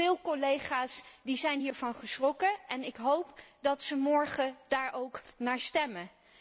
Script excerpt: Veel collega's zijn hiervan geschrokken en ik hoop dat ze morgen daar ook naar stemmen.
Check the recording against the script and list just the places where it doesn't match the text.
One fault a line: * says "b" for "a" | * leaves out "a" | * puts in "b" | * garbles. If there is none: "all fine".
all fine